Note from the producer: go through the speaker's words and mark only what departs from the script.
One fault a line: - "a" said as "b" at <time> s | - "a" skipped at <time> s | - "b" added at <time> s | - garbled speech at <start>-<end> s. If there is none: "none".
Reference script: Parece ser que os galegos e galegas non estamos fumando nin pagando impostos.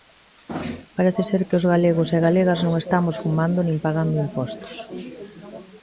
none